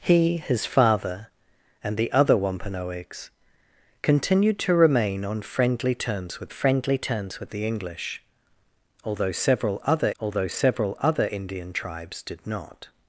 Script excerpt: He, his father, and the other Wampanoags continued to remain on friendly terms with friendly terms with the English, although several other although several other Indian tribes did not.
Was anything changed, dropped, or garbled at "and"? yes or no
no